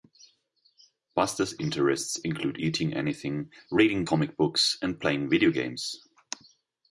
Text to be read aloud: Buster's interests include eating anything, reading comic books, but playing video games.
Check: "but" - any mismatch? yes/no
yes